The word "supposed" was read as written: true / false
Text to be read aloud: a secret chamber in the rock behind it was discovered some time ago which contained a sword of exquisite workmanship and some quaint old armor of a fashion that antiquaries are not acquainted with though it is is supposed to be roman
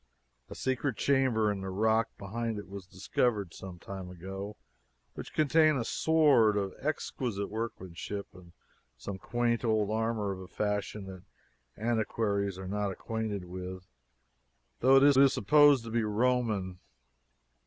true